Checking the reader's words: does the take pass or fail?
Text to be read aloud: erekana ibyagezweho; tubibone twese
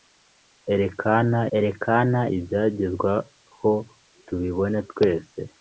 fail